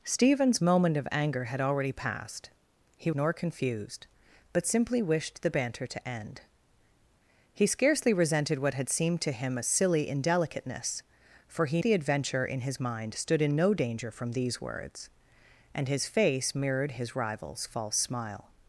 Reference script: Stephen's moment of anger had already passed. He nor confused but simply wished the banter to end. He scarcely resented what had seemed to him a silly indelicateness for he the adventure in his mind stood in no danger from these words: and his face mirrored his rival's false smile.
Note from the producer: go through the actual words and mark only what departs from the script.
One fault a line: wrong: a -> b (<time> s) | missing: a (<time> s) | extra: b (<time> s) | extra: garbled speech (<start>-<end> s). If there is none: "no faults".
no faults